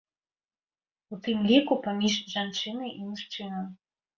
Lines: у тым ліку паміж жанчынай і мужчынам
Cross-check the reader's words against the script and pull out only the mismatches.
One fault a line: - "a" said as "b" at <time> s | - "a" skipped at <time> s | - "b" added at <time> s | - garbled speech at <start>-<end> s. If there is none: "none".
none